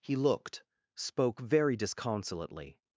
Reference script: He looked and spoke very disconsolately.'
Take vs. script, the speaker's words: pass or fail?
fail